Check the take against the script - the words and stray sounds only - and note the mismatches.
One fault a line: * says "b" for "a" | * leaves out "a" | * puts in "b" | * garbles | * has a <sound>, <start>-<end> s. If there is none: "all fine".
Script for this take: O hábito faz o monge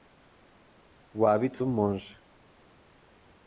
* leaves out "faz"